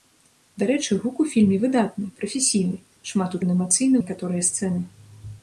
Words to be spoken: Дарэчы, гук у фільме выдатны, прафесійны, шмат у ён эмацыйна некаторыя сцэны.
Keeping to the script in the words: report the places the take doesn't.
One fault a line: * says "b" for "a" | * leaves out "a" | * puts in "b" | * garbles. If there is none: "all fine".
all fine